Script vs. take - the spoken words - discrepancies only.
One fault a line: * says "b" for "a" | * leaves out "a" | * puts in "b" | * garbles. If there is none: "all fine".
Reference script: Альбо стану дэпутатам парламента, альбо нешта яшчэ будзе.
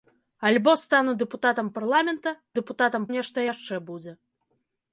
* says "дэпутатам" for "альбо"